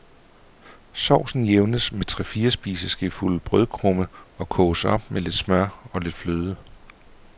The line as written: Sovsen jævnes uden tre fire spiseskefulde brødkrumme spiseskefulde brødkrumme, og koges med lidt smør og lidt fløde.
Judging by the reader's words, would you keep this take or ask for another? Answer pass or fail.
fail